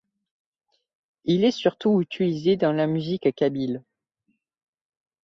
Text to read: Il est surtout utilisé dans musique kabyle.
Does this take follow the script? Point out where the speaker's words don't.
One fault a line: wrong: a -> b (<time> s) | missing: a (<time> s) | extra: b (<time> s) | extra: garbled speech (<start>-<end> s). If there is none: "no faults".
extra: la (2.7 s)